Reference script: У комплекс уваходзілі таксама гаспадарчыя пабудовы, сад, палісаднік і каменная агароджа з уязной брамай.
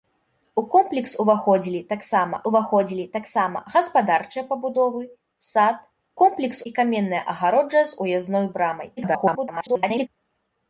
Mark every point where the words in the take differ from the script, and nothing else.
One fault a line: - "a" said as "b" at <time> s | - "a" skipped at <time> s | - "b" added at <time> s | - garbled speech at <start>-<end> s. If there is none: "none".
- "уваходзілі таксама" added at 2.5 s
- "палісаднік" said as "комплекс" at 6.2 s
- garbled speech at 9.0-10.1 s